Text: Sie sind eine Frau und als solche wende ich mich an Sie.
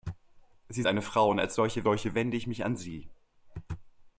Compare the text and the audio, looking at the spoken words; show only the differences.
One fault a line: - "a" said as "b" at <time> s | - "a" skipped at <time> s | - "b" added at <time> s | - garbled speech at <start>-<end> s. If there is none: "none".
- "sind" skipped at 0.8 s
- "solche" added at 1.8 s